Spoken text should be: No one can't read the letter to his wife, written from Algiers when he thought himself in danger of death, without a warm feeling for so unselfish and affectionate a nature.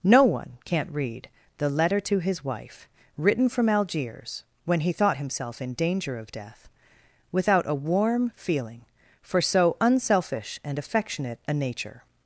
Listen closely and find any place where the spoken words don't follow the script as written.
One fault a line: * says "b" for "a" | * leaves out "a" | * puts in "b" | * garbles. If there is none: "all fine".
all fine